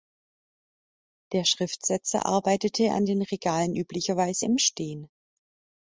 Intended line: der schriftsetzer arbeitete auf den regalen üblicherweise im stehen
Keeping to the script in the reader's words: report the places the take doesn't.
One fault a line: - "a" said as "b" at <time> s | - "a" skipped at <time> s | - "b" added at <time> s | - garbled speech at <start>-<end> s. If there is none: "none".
- "auf" said as "an" at 2.9 s